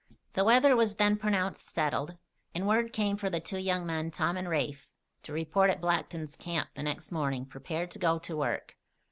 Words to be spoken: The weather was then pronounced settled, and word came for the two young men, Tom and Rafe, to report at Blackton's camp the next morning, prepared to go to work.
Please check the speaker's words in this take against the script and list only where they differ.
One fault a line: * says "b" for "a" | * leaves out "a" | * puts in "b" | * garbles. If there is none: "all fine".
all fine